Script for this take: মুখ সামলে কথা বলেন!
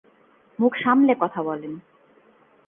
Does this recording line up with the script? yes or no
yes